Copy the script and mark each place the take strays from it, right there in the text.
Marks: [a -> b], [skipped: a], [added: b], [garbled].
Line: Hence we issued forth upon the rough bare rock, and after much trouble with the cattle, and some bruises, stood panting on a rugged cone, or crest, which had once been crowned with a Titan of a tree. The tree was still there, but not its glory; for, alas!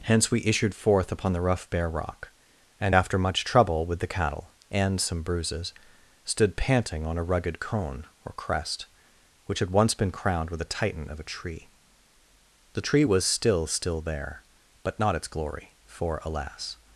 Hence we issued forth upon the rough bare rock, and after much trouble with the cattle, and some bruises, stood panting on a rugged cone, or crest, which had once been crowned with a Titan of a tree. The tree was still [added: still] there, but not its glory; for, alas!